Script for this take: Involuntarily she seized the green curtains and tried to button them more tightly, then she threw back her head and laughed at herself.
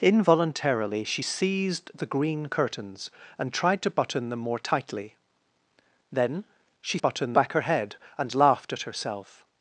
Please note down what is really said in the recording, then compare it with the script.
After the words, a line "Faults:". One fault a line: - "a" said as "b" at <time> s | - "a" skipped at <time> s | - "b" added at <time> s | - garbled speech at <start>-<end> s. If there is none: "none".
Involuntarily she seized the green curtains and tried to button them more tightly, then she button back her head and laughed at herself.
Faults:
- "threw" said as "button" at 7.0 s